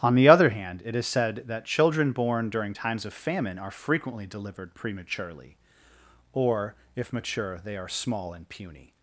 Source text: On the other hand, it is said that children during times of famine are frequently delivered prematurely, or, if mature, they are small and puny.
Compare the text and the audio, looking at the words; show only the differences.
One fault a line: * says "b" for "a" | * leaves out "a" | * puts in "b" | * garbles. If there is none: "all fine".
* puts in "born"